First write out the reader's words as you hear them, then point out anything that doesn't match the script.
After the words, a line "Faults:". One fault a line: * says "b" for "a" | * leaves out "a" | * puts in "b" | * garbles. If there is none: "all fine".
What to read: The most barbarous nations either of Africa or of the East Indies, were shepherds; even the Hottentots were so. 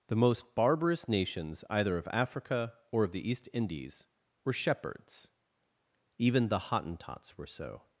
The most barbarous nations either of Africa or of the East Indies, were shepherds; even the Hottentots were so.
Faults:
all fine